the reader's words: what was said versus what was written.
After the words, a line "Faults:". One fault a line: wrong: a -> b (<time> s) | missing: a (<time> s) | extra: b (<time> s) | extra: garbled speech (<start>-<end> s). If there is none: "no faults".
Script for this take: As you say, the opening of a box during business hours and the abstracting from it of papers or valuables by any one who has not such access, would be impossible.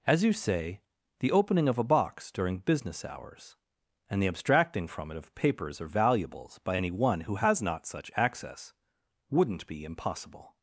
As you say, the opening of a box during business hours and the abstracting from it of papers or valuables by any one who has not such access, wouldn't be impossible.
Faults:
wrong: would -> wouldn't (9.3 s)